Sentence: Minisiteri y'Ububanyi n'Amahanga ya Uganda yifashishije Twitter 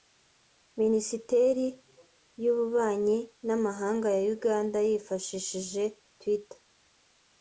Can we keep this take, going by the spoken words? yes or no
yes